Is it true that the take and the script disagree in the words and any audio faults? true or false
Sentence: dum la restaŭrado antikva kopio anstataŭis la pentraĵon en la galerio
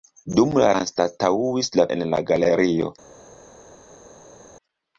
true